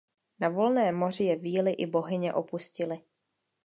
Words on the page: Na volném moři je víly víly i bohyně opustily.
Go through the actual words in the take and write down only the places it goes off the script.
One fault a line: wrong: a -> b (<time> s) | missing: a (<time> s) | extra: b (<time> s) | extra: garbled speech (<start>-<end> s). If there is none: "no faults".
missing: víly (1.7 s)